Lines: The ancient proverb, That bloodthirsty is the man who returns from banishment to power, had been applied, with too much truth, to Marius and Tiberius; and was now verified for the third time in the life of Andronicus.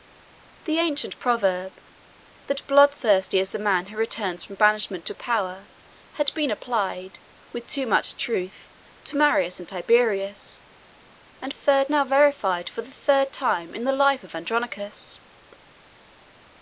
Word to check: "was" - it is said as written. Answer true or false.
false